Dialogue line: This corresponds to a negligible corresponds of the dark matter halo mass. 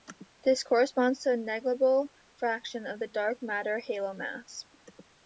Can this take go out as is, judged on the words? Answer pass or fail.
fail